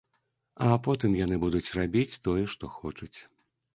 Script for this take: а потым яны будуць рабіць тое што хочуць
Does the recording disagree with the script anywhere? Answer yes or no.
no